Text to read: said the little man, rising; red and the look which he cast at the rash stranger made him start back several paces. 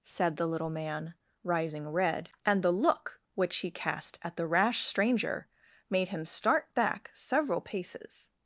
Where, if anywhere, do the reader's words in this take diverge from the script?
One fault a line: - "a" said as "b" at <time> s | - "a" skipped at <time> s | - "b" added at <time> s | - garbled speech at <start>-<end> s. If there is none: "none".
none